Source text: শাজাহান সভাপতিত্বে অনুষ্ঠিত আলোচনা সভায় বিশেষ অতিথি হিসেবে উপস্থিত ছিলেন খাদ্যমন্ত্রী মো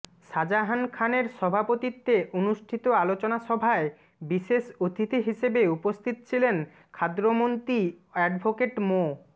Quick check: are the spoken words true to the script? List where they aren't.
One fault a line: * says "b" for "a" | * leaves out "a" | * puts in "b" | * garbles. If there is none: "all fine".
* puts in "খানের"
* puts in "অ্যাডভোকেট"